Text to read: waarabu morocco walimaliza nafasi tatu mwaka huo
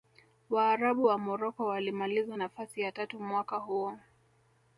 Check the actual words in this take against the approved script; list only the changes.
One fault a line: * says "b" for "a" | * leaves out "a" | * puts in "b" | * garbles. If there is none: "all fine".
* puts in "wa"
* puts in "ya"